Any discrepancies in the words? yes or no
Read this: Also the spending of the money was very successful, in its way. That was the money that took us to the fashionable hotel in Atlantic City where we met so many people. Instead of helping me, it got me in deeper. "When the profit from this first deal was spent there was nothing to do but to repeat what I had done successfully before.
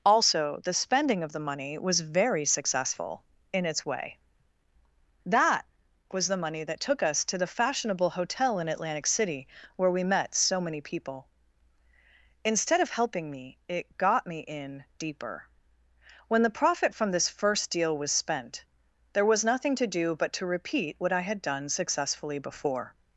no